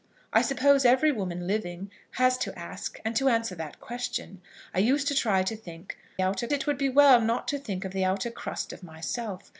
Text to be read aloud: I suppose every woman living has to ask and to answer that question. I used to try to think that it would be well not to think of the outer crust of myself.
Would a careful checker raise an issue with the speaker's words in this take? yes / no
yes